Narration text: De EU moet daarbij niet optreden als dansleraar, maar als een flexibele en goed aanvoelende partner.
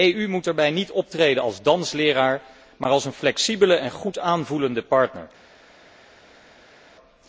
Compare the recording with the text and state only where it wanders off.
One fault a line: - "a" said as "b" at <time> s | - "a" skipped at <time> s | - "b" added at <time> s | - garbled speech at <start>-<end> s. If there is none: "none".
none